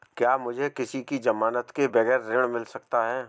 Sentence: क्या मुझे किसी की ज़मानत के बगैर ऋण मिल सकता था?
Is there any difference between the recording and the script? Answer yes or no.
yes